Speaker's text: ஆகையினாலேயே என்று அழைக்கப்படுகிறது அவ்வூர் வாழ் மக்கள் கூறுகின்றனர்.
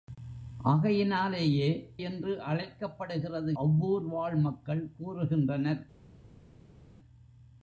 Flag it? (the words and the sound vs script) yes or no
no